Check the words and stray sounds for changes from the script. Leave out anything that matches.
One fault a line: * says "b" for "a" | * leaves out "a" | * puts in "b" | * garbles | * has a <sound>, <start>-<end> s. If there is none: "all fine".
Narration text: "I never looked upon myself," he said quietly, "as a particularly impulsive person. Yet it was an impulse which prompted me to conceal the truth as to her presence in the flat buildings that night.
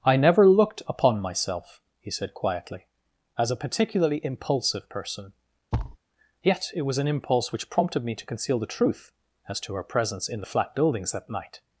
* has a thud, 5.7-6.0 s